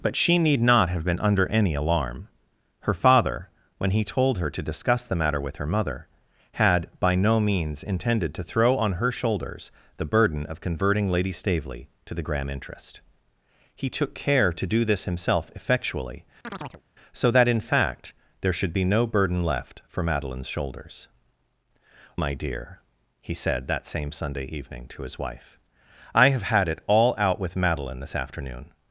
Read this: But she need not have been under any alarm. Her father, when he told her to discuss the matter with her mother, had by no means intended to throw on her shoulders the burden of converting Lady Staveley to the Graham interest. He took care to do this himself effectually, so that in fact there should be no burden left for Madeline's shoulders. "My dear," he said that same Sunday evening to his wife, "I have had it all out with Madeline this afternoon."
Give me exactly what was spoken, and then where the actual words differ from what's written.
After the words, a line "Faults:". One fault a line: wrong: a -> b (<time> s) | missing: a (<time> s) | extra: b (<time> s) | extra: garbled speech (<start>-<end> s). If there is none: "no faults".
But she need not have been under any alarm. Her father, when he told her to discuss the matter with her mother, had by no means intended to throw on her shoulders the burden of converting Lady Staveley to the Graham interest. He took care to do this himself effectually, so that in fact there should be no burden left for Madeline's shoulders. "My dear," he said that same Sunday evening to his wife, "I have had it all out with Madeline this afternoon."
Faults:
no faults